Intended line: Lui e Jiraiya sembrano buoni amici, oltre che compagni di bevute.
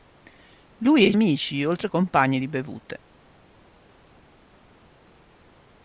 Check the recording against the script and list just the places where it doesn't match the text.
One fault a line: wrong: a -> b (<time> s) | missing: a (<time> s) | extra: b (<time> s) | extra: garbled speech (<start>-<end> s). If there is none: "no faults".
missing: Jiraiya sembrano buoni (1.1 s)
missing: che (1.9 s)